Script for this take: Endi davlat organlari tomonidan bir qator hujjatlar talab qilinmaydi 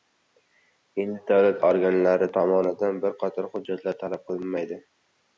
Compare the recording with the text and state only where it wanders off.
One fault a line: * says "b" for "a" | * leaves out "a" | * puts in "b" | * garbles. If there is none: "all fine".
all fine